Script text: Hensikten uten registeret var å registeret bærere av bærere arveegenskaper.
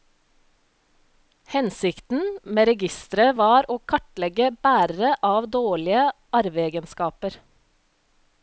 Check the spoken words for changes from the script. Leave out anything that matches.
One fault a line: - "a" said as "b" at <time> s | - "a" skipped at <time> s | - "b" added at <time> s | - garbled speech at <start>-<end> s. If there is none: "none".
- "uten" said as "med" at 2.6 s
- "registeret" said as "kartlegge" at 3.9 s
- "bærere" said as "dårlige" at 5.6 s